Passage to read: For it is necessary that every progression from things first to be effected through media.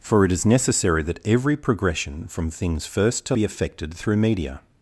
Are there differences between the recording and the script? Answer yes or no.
no